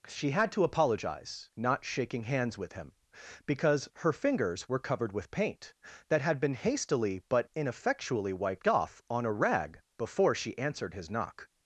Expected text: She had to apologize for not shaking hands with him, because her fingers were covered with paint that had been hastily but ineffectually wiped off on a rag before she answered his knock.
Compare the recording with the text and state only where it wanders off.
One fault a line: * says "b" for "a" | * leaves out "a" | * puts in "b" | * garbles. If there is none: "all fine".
* leaves out "for"